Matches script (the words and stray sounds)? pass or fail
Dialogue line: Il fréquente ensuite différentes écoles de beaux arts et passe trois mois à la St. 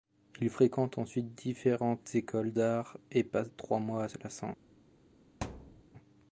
fail